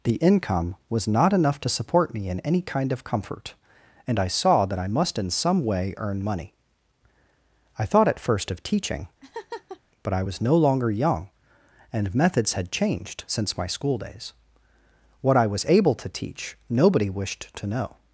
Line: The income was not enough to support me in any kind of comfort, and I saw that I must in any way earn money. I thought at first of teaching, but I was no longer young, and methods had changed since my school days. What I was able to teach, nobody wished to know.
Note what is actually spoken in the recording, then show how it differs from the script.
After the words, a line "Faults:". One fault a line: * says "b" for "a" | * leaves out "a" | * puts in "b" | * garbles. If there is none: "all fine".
The income was not enough to support me in any kind of comfort, and I saw that I must in some way earn money. I thought at first of teaching, but I was no longer young, and methods had changed since my school days. What I was able to teach, nobody wished to know.
Faults:
* says "some" for "any"